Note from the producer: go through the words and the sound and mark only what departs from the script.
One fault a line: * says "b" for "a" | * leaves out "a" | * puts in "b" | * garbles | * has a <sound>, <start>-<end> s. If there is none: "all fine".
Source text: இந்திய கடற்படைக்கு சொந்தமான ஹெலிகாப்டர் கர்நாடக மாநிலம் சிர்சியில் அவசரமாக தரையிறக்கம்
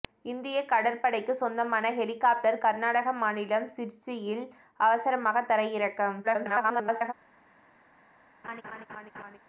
* garbles
* has a laugh, 8.4-9.4 s